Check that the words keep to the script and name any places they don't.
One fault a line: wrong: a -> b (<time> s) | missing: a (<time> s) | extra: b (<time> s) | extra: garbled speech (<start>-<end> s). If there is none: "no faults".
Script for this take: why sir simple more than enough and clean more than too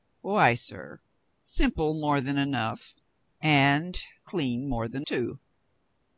no faults